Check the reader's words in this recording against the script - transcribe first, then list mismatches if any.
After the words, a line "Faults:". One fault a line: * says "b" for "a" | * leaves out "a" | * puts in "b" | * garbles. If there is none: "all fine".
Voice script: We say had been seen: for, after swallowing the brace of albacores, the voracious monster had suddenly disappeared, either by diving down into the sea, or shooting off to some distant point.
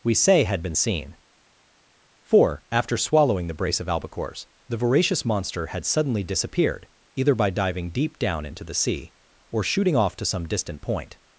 We say had been seen: for, after swallowing the brace of albacores, the voracious monster had suddenly disappeared, either by diving deep down into the sea, or shooting off to some distant point.
Faults:
* puts in "deep"